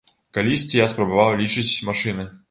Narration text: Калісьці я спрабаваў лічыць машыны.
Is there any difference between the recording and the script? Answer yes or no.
no